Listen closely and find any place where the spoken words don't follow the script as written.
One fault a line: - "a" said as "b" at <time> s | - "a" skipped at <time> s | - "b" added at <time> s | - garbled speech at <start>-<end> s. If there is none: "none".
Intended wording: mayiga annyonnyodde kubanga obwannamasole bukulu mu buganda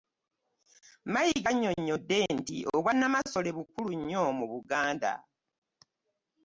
- "kubanga" said as "nti" at 2.4 s
- "nnyo" added at 4.0 s